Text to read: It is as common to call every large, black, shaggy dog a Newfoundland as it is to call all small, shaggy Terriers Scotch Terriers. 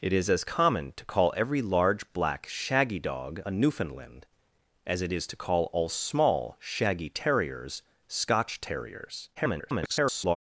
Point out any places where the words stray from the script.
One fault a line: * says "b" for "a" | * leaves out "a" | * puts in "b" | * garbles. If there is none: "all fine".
* garbles